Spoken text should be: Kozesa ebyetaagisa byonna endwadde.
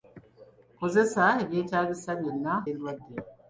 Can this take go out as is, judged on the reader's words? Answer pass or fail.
pass